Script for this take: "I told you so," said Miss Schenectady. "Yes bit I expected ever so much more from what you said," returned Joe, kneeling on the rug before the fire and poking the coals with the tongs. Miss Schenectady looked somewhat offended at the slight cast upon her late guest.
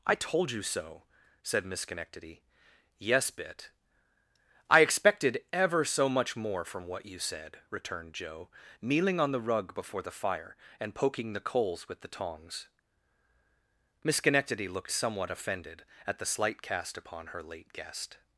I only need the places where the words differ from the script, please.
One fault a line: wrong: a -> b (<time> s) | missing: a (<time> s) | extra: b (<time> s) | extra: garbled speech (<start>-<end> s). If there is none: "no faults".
no faults